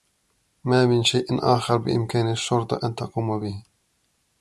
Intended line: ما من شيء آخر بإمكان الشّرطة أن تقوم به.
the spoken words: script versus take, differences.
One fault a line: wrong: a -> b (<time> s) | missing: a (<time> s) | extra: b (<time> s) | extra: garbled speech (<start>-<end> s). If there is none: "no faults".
no faults